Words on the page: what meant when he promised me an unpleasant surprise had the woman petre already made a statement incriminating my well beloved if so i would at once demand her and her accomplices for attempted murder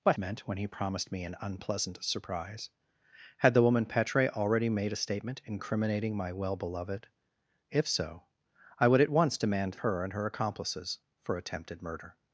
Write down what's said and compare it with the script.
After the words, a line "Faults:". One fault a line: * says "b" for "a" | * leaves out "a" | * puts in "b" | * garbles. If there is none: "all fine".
what meant when he promised me an unpleasant surprise had the woman petre already made a statement incriminating my well beloved if so i would at once demand her and her accomplices for attempted murder
Faults:
all fine